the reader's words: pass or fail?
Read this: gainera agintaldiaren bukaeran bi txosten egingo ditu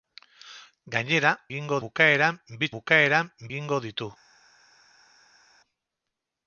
fail